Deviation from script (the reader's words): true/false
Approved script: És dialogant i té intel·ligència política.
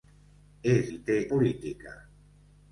true